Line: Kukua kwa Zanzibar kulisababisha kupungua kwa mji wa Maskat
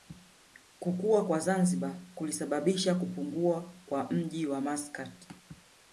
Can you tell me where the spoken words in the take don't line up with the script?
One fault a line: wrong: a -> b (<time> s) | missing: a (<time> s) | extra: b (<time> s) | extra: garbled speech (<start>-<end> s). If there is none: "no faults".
no faults